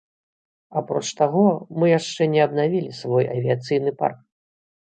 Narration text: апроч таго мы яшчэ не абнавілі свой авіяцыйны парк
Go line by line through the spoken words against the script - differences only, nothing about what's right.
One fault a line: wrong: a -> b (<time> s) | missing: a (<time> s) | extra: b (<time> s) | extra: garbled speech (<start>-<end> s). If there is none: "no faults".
no faults